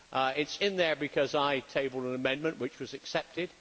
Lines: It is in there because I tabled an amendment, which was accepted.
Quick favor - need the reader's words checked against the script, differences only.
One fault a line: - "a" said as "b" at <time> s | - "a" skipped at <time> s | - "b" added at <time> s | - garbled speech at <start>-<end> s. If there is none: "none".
none